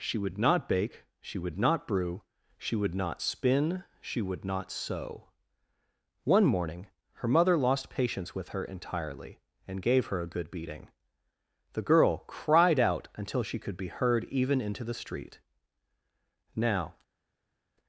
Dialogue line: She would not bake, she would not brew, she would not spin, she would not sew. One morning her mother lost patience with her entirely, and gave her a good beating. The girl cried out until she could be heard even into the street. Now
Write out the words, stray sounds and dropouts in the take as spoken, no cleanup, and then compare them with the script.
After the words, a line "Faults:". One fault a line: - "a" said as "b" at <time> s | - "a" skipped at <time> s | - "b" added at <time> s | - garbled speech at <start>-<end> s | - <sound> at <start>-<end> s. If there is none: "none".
She would not bake, she would not brew, she would not spin, she would not sew. One morning her mother lost patience with her entirely, and gave her a good beating. The girl cried out until she could be heard even into the street. Now
Faults:
none